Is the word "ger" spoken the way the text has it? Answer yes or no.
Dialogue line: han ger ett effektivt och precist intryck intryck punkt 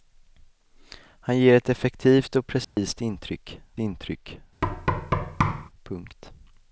yes